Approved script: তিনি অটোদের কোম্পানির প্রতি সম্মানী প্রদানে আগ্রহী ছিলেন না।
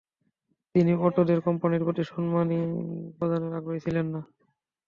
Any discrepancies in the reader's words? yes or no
no